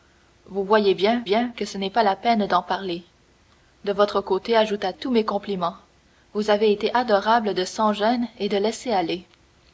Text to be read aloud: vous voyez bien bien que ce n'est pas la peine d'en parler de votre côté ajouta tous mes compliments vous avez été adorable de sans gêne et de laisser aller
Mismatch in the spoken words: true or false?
false